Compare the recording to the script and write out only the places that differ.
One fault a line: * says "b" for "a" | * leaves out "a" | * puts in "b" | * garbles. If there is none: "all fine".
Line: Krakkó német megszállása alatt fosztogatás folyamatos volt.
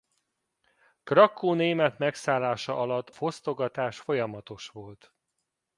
all fine